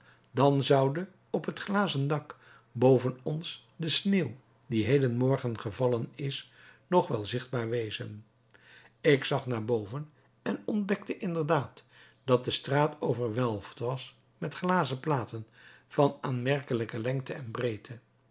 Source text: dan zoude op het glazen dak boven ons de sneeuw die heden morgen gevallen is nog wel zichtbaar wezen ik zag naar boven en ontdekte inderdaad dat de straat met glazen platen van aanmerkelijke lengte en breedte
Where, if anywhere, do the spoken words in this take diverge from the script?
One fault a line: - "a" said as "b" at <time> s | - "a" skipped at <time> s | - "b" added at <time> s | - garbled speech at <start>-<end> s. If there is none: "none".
- "overwelfd was" added at 13.0 s